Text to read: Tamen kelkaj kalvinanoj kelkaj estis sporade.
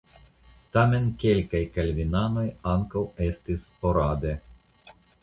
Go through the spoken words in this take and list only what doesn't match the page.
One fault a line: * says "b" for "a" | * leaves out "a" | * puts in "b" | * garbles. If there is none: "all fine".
* says "ankaŭ" for "kelkaj"